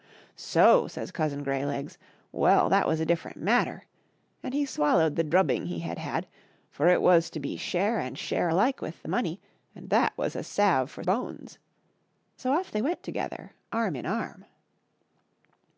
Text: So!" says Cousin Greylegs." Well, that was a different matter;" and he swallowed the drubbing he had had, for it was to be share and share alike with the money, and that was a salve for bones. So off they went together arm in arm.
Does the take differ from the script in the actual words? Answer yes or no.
no